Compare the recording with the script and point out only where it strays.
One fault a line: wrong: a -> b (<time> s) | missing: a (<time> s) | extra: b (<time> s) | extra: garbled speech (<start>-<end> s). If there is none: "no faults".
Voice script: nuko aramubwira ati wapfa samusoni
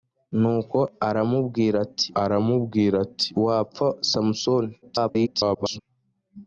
extra: aramubwira ati (2.2 s)
extra: garbled speech (4.8-5.8 s)